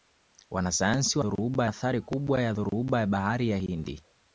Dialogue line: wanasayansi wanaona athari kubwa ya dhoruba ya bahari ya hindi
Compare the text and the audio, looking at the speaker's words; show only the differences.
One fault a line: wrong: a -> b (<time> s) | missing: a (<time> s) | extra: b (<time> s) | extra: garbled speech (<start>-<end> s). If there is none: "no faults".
wrong: wanaona -> dhoruba (1.2 s)